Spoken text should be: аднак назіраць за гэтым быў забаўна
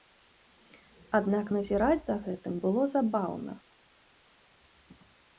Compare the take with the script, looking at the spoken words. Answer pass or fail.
fail